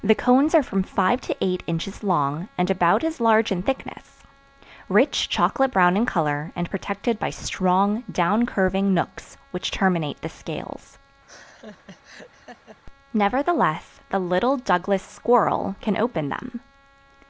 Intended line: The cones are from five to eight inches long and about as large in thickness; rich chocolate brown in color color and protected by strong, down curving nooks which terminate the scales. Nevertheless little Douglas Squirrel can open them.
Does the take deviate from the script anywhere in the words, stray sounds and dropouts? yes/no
yes